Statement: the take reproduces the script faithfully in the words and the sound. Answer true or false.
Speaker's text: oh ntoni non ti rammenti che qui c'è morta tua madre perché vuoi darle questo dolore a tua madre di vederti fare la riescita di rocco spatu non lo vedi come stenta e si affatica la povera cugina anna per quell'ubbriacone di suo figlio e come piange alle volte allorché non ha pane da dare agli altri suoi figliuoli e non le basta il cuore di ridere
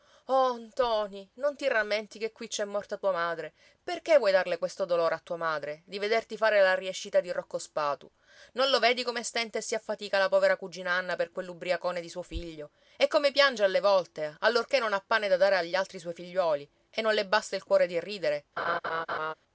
false